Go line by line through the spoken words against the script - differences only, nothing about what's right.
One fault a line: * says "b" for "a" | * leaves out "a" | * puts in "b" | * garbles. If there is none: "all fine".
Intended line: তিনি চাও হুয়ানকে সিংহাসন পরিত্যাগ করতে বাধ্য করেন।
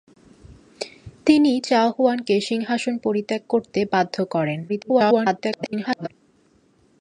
* garbles